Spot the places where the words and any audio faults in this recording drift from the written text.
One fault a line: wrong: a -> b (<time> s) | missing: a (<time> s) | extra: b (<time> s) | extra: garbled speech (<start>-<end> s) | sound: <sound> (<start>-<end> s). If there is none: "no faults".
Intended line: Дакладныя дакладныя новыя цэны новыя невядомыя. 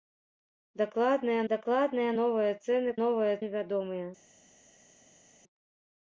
no faults